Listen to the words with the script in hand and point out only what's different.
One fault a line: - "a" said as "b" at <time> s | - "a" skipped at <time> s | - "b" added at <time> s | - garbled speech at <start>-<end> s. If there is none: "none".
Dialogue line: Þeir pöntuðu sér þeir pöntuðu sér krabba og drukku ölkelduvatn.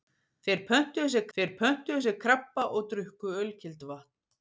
none